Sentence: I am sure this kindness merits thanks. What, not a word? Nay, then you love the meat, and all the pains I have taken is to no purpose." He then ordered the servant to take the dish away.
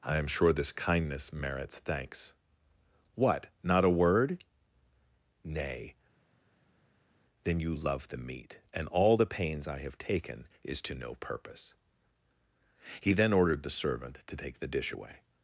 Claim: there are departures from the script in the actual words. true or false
false